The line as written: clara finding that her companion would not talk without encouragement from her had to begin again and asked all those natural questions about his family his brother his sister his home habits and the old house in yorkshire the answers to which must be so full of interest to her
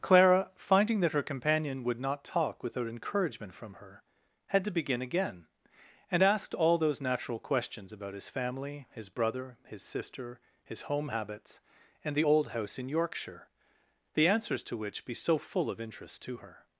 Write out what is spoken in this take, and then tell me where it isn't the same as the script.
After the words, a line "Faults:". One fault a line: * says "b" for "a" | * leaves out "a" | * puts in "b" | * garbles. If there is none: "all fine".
clara finding that her companion would not talk without encouragement from her had to begin again and asked all those natural questions about his family his brother his sister his home habits and the old house in yorkshire the answers to which be so full of interest to her
Faults:
* leaves out "must"